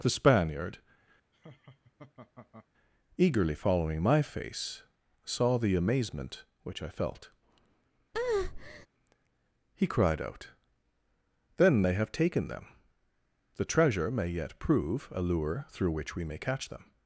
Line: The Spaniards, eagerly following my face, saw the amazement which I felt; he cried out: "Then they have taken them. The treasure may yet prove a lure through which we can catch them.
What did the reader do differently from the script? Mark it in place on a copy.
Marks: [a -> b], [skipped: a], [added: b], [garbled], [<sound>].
The [Spaniards, -> Spaniard] [laugh] eagerly following my face, saw the amazement which I felt; [breath] he cried out: "Then they have taken them. The treasure may yet prove a lure through which we [can -> may] catch them.